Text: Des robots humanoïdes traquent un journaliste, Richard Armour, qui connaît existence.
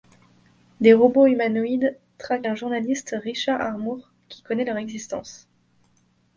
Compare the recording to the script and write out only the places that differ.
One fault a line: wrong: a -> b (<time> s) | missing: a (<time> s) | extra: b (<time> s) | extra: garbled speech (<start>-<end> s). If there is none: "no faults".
extra: leur (4.6 s)